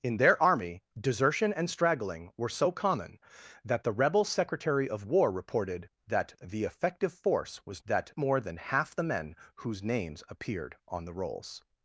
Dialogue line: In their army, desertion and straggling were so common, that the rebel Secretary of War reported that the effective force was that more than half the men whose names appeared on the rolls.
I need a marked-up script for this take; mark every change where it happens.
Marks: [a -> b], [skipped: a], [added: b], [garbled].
In their army, desertion and straggling were so common, that the rebel Secretary of War reported that the effective force was that more than half the men whose names appeared on the rolls.